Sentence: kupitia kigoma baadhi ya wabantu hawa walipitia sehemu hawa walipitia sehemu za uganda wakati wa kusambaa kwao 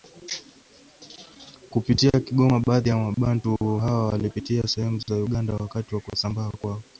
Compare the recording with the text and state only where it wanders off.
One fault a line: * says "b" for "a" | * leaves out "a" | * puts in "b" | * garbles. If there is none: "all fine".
* leaves out "hawa walipitia sehemu"